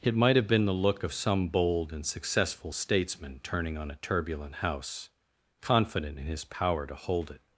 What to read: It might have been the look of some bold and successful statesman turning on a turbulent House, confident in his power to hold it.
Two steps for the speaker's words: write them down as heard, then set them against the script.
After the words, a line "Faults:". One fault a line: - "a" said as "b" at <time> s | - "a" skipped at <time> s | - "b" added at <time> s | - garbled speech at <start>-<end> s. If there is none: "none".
It might have been the look of some bold and successful statesman turning on a turbulent House, confident in his power to hold it.
Faults:
none